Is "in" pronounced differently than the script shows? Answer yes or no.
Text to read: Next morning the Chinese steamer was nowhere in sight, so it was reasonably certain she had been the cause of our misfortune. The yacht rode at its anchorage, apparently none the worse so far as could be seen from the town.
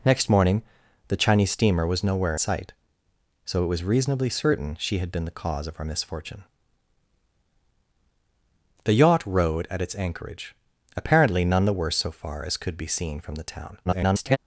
yes